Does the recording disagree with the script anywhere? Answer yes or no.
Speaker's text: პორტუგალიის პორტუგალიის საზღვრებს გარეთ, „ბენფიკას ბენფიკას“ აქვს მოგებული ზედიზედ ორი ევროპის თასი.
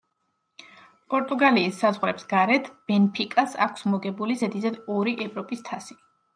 yes